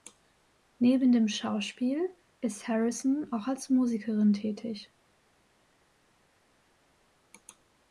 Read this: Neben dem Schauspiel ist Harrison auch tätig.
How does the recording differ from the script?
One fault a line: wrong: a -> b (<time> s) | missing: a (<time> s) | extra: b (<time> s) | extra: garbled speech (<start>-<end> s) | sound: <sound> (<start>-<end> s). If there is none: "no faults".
extra: als Musikerin (3.5 s)